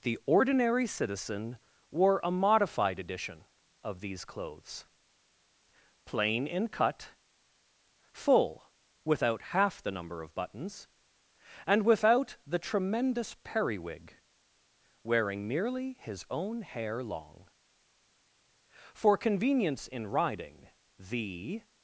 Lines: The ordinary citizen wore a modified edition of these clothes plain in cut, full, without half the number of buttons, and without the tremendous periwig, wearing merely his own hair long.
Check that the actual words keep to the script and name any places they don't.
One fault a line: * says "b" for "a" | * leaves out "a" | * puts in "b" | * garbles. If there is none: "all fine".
* puts in "For convenience in riding the"